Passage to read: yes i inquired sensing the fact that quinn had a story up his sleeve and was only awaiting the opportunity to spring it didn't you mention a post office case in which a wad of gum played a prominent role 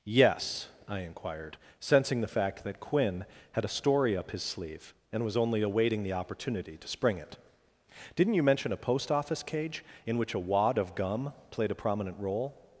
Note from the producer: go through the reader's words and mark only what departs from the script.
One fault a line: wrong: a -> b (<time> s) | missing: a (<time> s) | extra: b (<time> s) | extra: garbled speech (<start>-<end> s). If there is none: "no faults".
wrong: case -> cage (9.4 s)